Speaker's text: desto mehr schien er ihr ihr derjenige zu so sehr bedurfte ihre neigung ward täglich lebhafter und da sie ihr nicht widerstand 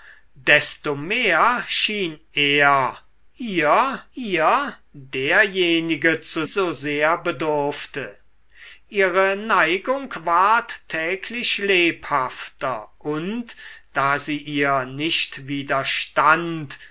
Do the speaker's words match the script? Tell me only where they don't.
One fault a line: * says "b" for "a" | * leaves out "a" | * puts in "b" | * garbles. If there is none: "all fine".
all fine